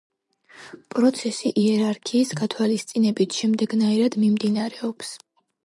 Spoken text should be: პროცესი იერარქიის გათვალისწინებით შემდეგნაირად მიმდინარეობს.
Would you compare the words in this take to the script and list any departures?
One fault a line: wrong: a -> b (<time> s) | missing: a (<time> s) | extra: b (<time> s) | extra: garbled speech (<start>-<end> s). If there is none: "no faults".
no faults